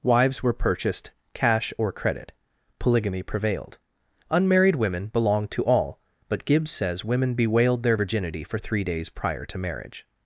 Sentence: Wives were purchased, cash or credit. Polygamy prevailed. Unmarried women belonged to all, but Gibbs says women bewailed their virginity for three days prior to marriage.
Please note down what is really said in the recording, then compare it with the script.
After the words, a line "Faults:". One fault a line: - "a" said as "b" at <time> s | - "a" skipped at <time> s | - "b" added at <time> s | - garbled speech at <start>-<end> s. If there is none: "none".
Wives were purchased, cash or credit. Polygamy prevailed. Unmarried women belonged to all, but Gibbs says women bewailed their virginity for three days prior to marriage.
Faults:
none